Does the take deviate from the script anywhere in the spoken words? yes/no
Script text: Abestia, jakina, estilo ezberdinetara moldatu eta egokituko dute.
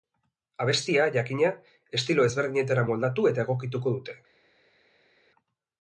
no